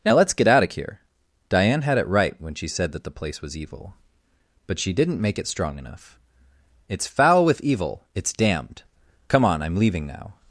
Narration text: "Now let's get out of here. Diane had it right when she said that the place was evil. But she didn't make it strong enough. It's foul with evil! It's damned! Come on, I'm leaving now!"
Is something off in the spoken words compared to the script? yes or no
no